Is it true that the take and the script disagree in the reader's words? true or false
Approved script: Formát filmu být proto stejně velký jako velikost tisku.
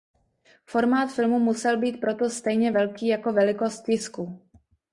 true